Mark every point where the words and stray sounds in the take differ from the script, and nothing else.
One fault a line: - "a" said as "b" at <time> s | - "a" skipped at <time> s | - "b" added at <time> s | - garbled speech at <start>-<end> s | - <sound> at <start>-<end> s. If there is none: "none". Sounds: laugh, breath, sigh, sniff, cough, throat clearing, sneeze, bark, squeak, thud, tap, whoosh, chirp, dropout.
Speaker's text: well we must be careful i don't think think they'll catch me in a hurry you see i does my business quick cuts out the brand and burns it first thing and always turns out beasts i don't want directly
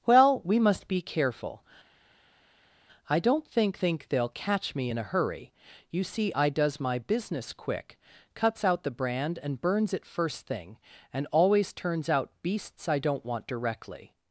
none